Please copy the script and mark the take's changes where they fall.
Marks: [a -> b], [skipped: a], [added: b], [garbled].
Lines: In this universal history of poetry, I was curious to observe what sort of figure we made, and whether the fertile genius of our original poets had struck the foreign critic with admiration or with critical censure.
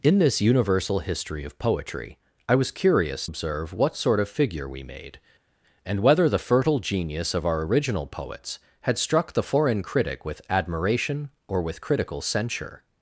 In this universal history of poetry, I was curious [skipped: to] observe what sort of figure we made, and whether the fertile genius of our original poets had struck the foreign critic with admiration or with critical censure.